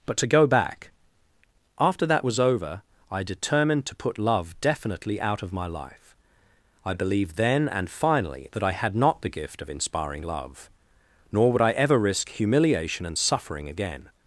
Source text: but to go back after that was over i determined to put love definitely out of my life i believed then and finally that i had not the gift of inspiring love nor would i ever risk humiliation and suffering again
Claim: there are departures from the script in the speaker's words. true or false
false